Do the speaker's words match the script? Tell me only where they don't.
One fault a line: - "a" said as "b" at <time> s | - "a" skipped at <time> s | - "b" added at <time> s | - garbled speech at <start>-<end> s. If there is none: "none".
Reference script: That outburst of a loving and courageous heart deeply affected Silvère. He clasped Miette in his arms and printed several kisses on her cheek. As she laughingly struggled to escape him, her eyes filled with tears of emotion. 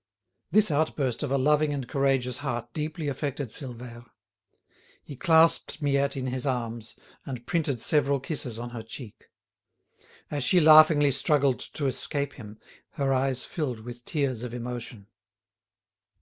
- "That" said as "This" at 0.5 s